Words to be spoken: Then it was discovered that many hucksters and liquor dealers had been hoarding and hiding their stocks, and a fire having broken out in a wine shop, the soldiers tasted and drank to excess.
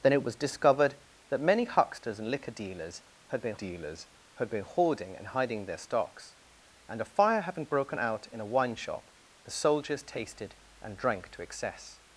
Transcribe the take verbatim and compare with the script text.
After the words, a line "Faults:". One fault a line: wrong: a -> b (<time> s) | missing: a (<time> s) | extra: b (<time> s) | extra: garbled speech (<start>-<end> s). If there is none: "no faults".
Then it was discovered that many hucksters and liquor dealers had been dealers had been hoarding and hiding their stocks, and a fire having broken out in a wine shop, the soldiers tasted and drank to excess.
Faults:
extra: dealers had been (3.5 s)